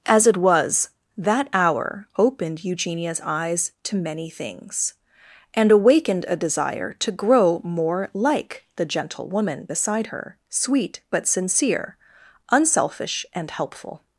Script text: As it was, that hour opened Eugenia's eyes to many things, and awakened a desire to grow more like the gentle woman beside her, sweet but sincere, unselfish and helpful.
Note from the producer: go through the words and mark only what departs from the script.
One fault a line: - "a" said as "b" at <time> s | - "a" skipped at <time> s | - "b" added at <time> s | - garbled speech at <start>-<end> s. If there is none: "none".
none